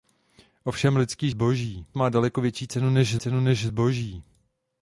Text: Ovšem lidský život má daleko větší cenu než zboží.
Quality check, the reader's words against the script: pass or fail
fail